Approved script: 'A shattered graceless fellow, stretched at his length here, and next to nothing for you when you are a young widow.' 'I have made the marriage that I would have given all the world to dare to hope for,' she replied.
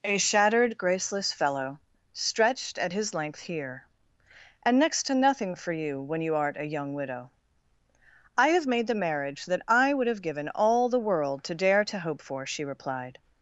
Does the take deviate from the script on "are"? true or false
true